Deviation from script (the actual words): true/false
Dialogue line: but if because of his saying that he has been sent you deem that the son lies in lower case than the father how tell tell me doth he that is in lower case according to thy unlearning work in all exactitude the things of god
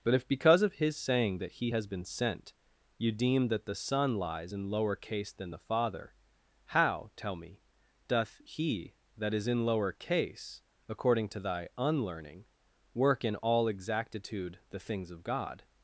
true